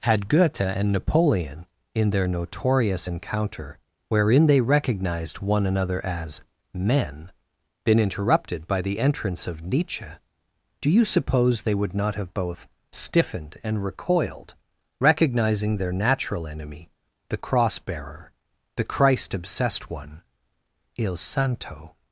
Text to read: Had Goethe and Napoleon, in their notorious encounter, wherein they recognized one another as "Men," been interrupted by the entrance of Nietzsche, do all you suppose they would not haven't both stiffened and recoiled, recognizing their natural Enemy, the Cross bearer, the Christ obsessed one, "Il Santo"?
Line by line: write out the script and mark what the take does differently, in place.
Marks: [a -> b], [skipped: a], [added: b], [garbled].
Had Goethe and Napoleon, in their notorious encounter, wherein they recognized one another as "Men," been interrupted by the entrance of Nietzsche, do [skipped: all] you suppose they would not [haven't -> have] both stiffened and recoiled, recognizing their natural Enemy, the Cross bearer, the Christ obsessed one, "Il Santo"?